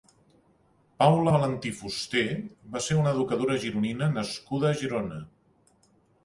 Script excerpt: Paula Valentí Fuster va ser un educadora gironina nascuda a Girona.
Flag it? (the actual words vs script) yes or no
yes